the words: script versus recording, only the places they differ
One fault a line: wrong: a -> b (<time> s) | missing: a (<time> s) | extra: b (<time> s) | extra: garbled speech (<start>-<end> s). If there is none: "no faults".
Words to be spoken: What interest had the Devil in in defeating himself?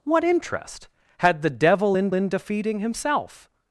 no faults